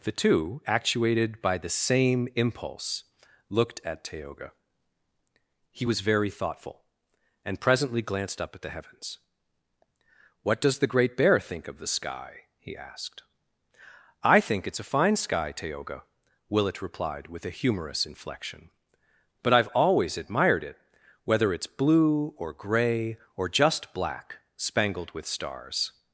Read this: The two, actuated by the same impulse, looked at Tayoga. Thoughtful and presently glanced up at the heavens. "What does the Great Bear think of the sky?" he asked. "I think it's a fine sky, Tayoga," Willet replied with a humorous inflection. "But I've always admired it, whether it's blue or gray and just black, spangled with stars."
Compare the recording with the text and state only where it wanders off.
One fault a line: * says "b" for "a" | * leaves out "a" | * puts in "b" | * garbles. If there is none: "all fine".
* puts in "He was very"
* says "or" for "and"